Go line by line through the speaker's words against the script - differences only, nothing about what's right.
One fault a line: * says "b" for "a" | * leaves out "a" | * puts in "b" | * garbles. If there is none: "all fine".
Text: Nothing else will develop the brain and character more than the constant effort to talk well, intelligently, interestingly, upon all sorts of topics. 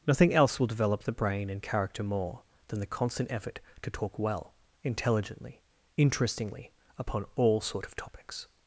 * says "sort" for "sorts"